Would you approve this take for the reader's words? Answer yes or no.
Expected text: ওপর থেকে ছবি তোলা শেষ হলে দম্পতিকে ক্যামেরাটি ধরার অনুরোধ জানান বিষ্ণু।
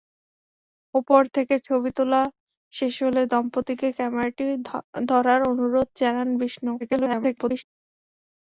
no